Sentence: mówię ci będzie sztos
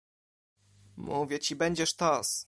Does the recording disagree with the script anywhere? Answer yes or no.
no